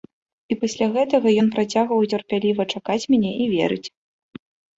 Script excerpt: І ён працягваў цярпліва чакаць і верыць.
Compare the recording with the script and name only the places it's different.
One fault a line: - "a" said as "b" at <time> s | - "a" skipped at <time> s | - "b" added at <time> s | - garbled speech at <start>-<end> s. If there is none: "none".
- "пасля гэтага" added at 0.6 s
- "мяне" added at 3.1 s